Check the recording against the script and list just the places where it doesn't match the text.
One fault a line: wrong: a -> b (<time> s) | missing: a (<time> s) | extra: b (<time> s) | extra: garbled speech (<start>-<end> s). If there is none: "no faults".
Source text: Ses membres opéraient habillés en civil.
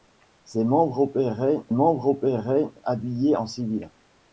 extra: membres opéraient (1.7 s)